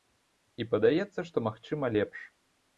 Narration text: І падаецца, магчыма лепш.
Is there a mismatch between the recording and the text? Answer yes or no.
yes